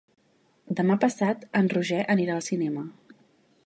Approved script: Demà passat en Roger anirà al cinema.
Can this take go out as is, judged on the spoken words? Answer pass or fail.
pass